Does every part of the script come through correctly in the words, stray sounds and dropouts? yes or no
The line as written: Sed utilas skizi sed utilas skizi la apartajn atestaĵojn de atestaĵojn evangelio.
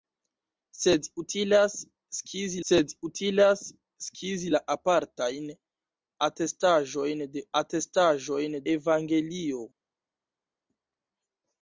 yes